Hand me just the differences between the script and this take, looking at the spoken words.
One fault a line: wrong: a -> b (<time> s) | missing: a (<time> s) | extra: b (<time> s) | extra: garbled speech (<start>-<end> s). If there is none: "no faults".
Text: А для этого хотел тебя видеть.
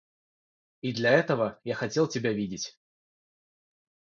wrong: А -> И (0.8 s)
extra: я (1.6 s)